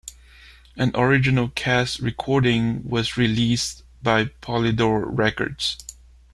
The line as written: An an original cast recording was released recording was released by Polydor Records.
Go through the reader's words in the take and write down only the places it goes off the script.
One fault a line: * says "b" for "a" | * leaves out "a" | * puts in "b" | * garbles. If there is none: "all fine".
* leaves out "an"
* leaves out "recording was released"